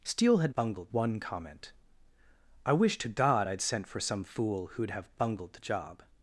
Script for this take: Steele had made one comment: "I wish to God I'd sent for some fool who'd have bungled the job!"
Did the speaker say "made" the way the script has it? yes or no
no